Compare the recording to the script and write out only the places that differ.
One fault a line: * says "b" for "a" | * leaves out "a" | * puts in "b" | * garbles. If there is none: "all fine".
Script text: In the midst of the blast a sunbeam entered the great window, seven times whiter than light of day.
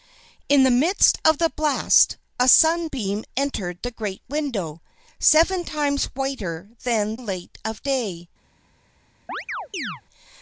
all fine